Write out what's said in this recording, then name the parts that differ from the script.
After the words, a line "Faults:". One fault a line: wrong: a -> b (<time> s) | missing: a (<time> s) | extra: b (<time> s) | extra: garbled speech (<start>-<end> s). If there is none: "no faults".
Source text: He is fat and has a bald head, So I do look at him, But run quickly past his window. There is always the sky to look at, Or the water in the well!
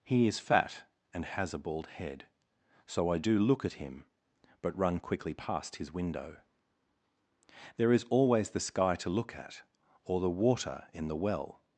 He is fat and has a bald head, So I do look at him, But run quickly past his window. There is always the sky to look at, Or the water in the well!
Faults:
no faults